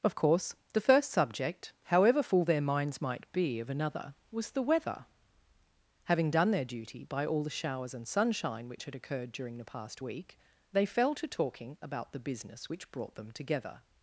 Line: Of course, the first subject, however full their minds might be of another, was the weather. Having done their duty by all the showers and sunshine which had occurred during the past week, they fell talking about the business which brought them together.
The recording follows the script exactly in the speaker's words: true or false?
false